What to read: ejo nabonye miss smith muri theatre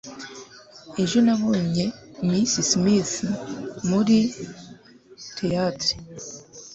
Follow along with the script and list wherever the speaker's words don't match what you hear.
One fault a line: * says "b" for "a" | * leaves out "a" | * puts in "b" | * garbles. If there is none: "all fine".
all fine